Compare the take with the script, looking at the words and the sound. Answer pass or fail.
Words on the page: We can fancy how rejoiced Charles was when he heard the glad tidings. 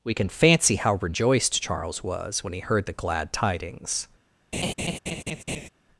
fail